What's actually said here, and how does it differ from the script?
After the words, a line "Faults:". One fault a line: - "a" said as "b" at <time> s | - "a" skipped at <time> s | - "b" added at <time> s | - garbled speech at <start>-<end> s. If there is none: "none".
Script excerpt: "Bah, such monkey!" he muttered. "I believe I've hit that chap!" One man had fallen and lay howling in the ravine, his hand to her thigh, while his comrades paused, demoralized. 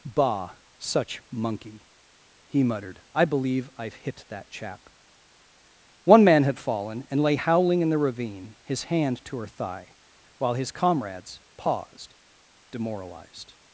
"Bah, such monkey!" he muttered. "I believe I've hit that chap!" One man had fallen and lay howling in the ravine, his hand to her thigh, while his comrades paused, demoralized.
Faults:
none